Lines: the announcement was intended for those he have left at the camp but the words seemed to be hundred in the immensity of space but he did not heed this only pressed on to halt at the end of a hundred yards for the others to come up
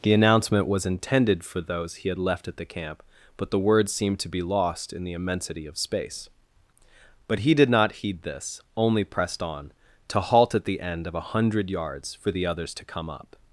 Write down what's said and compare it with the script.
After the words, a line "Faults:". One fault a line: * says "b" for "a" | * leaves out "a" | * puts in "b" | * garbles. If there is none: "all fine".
the announcement was intended for those he had left at the camp but the words seemed to be lost in the immensity of space but he did not heed this only pressed on to halt at the end of a hundred yards for the others to come up
Faults:
* says "had" for "have"
* says "lost" for "hundred"